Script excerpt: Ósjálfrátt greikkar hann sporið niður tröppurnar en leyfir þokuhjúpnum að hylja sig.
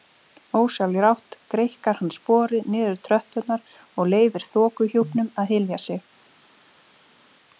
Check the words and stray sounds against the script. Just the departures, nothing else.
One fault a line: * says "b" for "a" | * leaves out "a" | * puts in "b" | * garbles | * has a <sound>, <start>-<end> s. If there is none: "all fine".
* says "og" for "en"